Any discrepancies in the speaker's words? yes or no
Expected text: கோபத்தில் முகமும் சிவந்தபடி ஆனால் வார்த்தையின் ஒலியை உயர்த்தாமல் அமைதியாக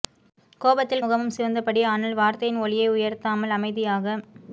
no